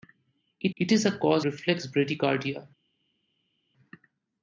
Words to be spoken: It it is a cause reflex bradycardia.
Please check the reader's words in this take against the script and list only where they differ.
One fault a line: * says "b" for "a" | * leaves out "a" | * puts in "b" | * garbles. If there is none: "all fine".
all fine